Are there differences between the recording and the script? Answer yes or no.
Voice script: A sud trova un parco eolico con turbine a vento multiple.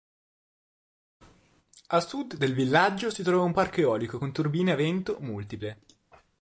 yes